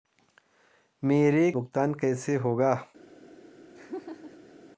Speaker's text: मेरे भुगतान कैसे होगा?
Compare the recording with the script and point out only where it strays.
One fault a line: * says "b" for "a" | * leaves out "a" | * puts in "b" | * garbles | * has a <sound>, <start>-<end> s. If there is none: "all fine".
* has a laugh, 3.7-4.5 s